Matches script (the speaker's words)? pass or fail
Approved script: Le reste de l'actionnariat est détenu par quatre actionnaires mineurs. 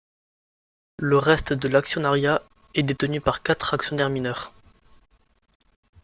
pass